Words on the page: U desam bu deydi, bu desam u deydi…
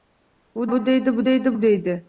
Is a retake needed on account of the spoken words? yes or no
yes